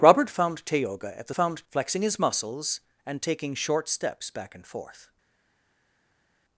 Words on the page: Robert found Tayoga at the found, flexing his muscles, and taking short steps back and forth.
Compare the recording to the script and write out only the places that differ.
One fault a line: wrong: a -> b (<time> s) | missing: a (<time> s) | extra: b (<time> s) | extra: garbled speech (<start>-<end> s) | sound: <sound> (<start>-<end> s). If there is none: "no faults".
no faults